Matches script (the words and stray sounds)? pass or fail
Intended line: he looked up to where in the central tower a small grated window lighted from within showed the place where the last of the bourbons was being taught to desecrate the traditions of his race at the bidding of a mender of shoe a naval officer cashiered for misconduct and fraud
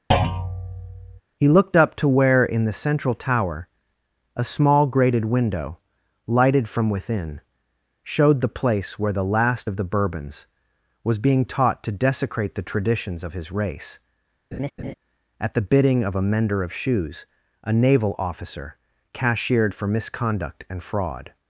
fail